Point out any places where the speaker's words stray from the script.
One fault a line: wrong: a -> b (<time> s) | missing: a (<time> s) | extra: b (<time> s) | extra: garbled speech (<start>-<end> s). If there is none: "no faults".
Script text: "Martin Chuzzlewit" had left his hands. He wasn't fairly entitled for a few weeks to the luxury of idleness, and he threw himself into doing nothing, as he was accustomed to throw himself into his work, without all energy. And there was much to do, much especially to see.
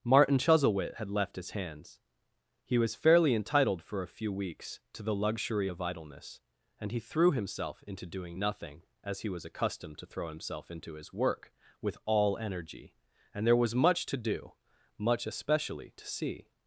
wrong: wasn't -> was (2.8 s)
wrong: without -> with (11.8 s)